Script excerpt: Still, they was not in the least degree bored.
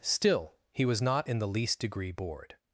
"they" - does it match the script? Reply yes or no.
no